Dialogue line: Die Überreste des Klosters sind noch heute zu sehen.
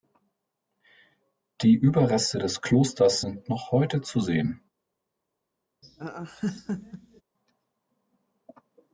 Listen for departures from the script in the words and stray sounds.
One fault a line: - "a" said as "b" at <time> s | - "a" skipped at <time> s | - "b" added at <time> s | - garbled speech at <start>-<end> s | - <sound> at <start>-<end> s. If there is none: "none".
- laugh at 5.8-7.2 s